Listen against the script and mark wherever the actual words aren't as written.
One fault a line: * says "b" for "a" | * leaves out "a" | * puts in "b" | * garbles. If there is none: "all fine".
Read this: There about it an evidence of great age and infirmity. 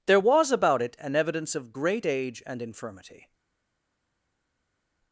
* puts in "was"